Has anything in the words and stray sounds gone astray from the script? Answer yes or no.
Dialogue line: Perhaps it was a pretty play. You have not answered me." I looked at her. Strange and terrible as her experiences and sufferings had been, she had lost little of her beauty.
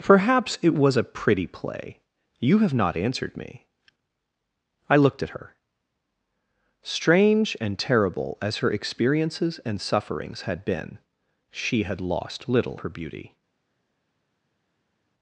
yes